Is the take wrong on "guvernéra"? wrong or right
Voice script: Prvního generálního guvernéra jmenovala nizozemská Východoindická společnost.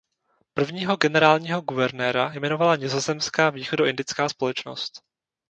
right